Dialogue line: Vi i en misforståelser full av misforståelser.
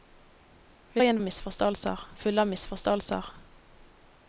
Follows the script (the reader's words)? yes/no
yes